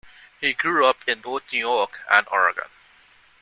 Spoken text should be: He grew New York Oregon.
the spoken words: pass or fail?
fail